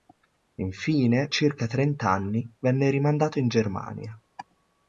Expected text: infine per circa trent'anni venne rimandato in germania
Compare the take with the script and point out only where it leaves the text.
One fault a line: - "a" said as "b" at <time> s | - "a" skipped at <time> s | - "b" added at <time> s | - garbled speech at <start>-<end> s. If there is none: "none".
- "per" skipped at 1.3 s